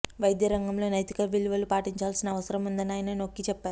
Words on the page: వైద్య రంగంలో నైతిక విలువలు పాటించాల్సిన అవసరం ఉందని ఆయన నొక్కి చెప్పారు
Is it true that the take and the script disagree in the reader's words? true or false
false